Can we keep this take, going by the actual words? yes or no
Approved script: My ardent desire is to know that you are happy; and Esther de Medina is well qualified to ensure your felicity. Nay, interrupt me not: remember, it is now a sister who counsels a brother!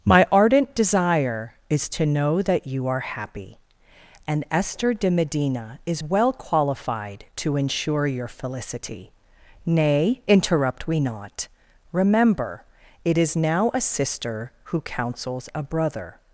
no